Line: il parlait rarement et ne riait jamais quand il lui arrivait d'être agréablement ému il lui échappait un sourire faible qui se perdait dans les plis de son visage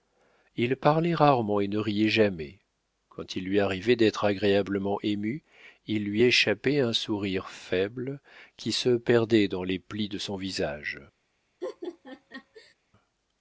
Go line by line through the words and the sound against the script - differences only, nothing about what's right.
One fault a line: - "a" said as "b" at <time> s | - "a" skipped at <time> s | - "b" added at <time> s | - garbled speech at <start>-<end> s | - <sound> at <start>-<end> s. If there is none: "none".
- laugh at 11.6-12.7 s